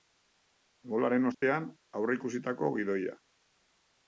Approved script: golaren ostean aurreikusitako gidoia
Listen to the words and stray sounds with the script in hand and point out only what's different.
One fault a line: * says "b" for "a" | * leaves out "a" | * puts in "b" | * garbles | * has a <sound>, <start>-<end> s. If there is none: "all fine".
* has a dropout, 1.3-1.4 s